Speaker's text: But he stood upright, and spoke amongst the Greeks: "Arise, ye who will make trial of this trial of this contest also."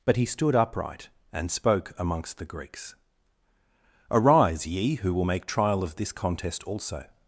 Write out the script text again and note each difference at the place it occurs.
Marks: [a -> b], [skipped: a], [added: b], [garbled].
But he stood upright, and spoke amongst the Greeks: "Arise, ye who will make trial of this [skipped: trial of this] contest also."